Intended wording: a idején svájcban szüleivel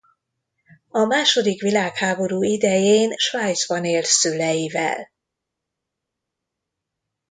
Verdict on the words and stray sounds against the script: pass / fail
fail